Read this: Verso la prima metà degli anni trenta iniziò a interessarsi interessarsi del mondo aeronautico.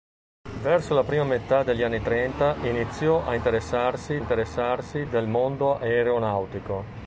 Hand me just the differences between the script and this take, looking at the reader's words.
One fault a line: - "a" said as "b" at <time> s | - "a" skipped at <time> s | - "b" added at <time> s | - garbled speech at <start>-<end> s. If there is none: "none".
none